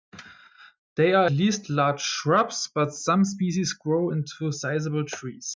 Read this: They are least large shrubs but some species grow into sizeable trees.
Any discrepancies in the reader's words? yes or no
no